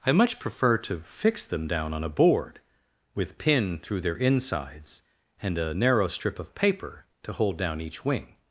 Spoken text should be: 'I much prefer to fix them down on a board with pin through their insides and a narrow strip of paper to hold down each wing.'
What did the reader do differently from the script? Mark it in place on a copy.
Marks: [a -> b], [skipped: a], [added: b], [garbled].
'I much prefer to fix them down on a board with pin through their insides and a narrow strip of paper to hold down each wing.'